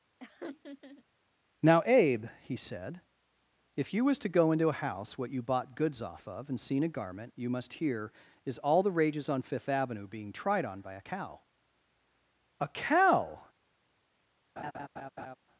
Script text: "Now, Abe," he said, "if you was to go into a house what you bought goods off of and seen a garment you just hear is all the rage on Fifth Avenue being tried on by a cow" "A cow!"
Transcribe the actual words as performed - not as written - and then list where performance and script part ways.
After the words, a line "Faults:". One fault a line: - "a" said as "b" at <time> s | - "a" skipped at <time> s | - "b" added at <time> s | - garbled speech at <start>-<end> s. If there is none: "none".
"Now, Abe," he said, "if you was to go into a house what you bought goods off of and seen a garment you must hear is all the rages on Fifth Avenue being tried on by a cow" "A cow!"
Faults:
- "just" said as "must" at 7.5 s
- "rage" said as "rages" at 8.9 s